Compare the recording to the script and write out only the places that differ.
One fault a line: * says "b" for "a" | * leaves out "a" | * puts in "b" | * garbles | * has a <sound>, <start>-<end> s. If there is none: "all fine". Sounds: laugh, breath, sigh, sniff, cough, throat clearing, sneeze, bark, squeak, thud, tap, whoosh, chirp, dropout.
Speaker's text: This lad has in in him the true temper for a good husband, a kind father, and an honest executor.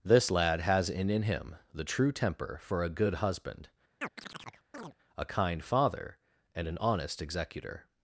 * has a chirp, 4.0-4.9 s